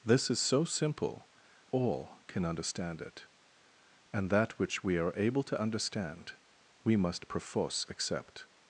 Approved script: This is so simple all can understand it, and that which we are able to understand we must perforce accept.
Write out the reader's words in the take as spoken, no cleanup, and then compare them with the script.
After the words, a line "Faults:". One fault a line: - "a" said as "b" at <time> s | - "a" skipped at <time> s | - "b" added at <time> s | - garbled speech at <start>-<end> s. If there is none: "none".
This is so simple all can understand it, and that which we are able to understand we must perforce accept.
Faults:
none